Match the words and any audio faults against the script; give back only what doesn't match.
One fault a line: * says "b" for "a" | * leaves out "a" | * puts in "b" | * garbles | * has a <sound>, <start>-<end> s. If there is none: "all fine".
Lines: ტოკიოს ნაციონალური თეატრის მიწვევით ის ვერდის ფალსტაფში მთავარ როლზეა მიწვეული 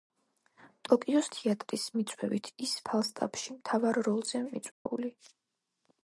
* leaves out "ნაციონალური"
* leaves out "ვერდის"
* has a dropout, 4.7-4.9 s